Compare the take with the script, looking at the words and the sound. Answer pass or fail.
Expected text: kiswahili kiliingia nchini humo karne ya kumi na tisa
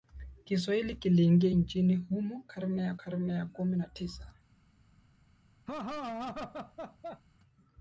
fail